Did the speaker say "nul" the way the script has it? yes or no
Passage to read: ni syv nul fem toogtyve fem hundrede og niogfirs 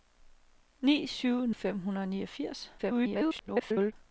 no